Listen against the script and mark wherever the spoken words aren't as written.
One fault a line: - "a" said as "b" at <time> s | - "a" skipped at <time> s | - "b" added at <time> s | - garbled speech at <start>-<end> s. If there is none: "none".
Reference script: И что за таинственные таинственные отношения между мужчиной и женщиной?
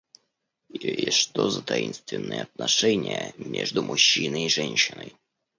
- "таинственные" skipped at 2.4 s